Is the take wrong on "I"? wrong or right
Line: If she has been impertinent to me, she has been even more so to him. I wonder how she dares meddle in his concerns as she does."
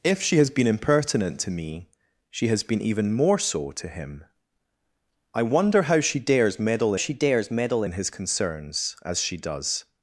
right